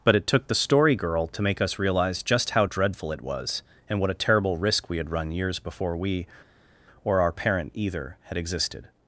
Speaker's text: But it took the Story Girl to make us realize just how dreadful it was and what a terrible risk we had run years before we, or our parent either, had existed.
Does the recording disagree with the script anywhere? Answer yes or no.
no